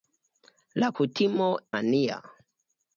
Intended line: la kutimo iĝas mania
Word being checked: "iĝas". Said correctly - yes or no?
no